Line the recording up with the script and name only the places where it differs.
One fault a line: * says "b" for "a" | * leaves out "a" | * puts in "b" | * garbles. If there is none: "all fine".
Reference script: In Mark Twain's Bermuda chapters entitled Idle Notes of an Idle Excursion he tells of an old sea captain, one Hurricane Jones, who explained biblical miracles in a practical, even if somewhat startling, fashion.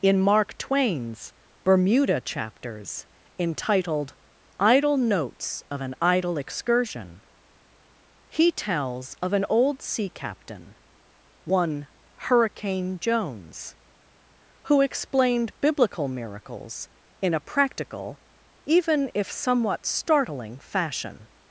all fine